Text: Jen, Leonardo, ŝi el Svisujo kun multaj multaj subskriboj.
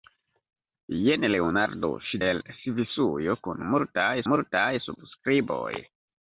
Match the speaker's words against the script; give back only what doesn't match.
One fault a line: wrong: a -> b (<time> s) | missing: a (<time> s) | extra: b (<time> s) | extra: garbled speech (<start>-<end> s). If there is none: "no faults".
no faults